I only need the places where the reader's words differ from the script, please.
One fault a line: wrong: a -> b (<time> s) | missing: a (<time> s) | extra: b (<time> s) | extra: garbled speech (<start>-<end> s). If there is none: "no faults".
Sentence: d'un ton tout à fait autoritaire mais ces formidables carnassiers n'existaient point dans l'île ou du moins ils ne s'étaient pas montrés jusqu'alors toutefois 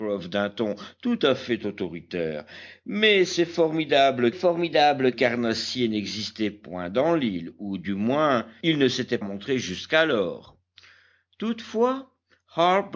extra: formidables (4.3 s)
missing: pas (9.2 s)